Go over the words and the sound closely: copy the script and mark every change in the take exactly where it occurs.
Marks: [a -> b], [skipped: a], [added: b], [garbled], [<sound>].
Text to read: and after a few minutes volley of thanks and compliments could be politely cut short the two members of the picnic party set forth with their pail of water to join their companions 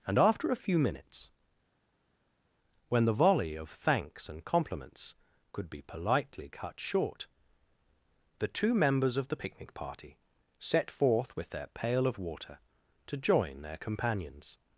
and after a few minutes [added: when the] volley of thanks and compliments could be politely cut short the two members of the picnic party set forth with their pail of water to join their companions